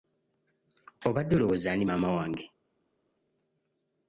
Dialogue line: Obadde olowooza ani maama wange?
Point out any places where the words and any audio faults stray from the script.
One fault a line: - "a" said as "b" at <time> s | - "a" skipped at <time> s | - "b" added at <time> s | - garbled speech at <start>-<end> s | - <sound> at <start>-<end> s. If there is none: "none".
none